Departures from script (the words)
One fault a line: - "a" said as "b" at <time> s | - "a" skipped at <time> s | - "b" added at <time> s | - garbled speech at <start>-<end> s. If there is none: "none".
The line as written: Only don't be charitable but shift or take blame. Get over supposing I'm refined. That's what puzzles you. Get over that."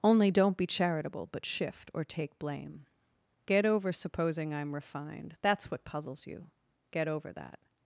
none